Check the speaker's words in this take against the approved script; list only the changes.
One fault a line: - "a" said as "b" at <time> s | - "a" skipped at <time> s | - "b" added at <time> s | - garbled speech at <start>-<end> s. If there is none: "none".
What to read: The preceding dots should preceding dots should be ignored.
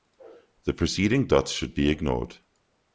- "preceding dots should" skipped at 1.8 s